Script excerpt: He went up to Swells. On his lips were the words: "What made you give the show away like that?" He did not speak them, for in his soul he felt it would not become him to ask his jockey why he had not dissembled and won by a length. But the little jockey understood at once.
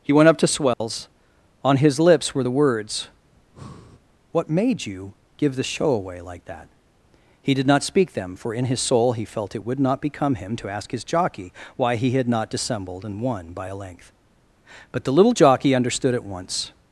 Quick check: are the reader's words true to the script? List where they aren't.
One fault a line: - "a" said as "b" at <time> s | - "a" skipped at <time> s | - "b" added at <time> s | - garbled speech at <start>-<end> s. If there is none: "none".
none